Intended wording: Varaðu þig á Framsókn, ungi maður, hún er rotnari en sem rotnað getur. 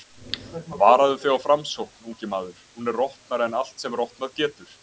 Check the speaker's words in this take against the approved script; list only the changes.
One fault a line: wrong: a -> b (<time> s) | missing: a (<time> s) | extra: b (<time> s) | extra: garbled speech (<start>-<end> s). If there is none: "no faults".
extra: allt (3.6 s)